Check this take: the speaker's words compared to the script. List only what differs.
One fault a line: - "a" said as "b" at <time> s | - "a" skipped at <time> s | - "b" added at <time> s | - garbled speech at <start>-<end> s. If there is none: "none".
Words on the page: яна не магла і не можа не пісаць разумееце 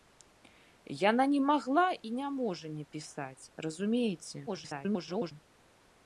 - garbled speech at 4.5-5.3 s